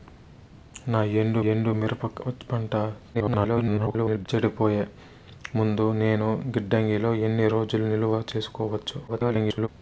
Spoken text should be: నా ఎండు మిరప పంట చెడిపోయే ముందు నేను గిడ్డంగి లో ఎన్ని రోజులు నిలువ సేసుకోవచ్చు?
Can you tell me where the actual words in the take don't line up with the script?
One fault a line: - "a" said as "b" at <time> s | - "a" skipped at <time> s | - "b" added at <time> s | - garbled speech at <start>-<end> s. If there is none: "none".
- "ఎండు" added at 1.4 s
- garbled speech at 3.1-4.3 s
- garbled speech at 9.1-9.7 s